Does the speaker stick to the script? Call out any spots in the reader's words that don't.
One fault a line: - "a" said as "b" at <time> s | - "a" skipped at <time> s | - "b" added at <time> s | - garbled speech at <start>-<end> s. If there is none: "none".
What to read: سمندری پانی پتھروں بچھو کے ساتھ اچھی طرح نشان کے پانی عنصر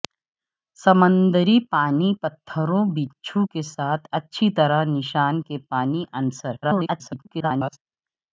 - garbled speech at 6.6-7.8 s